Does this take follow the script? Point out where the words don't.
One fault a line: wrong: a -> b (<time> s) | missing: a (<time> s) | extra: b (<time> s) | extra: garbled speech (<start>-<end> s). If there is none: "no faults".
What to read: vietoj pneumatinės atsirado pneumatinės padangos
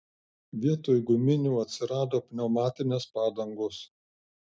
wrong: pneumatinės -> guminių (1.1 s)